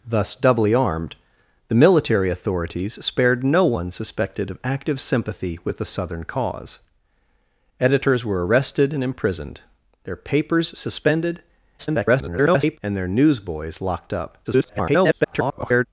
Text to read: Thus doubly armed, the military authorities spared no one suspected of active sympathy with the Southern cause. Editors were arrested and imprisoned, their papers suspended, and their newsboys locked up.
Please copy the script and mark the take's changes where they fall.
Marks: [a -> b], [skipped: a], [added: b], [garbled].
Thus doubly armed, the military authorities spared no one suspected of active sympathy with the Southern cause. Editors were arrested and imprisoned, their papers suspended, [garbled] and their newsboys locked up. [garbled]